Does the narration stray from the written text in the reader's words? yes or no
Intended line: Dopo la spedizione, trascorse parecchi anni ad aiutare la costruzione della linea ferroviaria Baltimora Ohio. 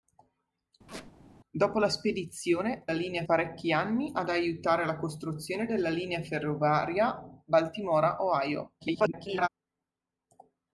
yes